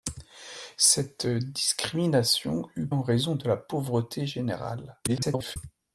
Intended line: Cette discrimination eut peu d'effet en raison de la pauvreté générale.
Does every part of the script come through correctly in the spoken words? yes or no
no